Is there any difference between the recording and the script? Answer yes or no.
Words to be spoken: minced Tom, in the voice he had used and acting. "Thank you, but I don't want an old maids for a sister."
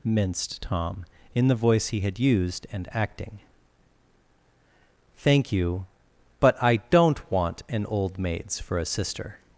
no